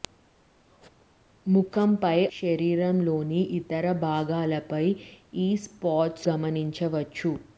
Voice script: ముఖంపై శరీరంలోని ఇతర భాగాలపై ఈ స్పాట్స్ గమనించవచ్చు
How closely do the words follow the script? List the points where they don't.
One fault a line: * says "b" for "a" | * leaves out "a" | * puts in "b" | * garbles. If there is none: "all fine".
all fine